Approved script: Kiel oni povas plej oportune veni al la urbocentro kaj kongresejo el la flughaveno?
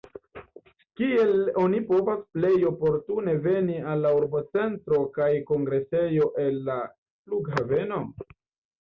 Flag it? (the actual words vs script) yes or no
no